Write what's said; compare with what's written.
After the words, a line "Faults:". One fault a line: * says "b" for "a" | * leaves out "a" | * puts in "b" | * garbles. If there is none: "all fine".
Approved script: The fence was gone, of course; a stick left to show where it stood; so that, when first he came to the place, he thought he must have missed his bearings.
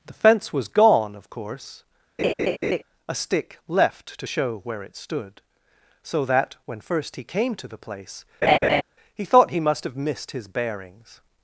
The fence was gone, of course; a stick left to show where it stood; so that, when first he came to the place, he thought he must have missed his bearings.
Faults:
all fine